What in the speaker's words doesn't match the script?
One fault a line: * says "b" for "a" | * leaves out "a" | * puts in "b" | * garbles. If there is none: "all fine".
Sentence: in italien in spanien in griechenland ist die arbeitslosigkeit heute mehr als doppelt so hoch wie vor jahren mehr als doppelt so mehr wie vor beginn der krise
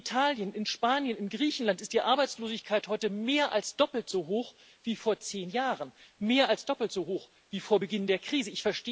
* puts in "zehn"
* says "hoch" for "mehr"